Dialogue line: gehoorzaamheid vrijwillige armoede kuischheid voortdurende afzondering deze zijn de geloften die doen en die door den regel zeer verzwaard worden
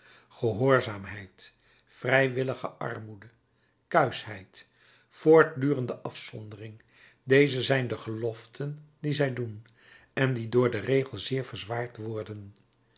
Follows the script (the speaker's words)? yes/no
no